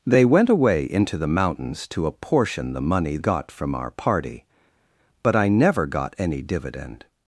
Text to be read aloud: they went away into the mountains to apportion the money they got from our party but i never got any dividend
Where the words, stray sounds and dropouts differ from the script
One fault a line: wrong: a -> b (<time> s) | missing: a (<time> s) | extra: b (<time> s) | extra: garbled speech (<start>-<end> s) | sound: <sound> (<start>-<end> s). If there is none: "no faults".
missing: they (3.2 s)